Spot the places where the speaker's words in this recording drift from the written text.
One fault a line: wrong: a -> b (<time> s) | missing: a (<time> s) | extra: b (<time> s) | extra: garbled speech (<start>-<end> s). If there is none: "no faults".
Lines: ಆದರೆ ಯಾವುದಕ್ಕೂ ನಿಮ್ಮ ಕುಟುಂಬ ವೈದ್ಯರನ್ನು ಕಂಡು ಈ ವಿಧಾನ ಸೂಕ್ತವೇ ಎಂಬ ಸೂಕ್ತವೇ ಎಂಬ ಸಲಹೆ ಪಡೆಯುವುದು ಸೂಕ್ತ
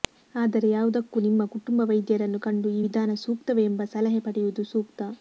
missing: ಸೂಕ್ತವೇ ಎಂಬ (3.8 s)